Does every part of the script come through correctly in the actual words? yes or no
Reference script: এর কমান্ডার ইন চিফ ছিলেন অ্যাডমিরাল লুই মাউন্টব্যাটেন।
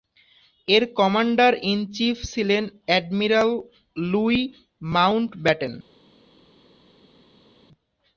yes